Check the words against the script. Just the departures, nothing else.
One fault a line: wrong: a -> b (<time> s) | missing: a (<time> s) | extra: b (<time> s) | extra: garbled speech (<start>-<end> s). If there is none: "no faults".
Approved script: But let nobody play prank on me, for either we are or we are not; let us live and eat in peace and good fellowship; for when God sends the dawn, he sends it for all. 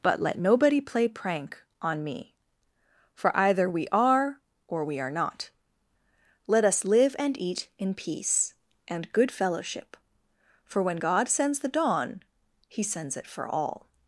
no faults